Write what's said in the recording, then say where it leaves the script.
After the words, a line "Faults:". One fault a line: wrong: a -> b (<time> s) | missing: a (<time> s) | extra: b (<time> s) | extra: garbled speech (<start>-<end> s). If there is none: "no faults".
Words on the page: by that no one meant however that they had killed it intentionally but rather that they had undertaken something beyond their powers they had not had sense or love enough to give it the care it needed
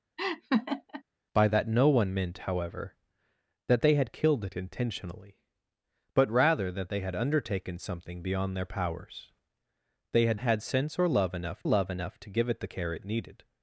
by that no one meant however that they had killed it intentionally but rather that they had undertaken something beyond their powers they had had sense or love enough love enough to give it the care it needed
Faults:
missing: not (10.4 s)
extra: love enough (11.6 s)